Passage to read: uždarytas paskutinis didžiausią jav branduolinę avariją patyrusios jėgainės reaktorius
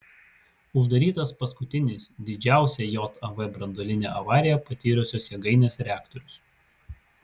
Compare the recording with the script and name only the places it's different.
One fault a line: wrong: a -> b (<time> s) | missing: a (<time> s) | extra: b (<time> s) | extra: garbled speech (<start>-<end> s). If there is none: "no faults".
no faults